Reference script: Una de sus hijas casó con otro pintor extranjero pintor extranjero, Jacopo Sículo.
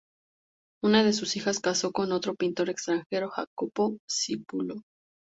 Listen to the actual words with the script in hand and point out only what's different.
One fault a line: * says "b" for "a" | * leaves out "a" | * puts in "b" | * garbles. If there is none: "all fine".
* leaves out "pintor extranjero"